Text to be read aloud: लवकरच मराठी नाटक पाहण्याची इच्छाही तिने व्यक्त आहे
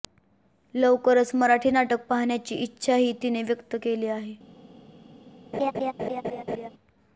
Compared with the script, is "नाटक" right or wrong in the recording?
right